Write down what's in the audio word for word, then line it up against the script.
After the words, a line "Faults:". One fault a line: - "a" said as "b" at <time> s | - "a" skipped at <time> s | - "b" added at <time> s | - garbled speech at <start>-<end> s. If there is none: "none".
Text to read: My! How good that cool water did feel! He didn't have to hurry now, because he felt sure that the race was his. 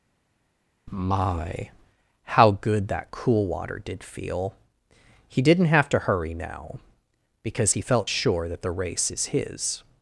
My! How good that cool water did feel! He didn't have to hurry now, because he felt sure that the race is his.
Faults:
- "was" said as "is" at 9.1 s